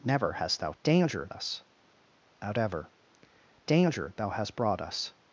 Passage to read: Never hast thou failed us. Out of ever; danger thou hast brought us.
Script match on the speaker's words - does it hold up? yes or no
no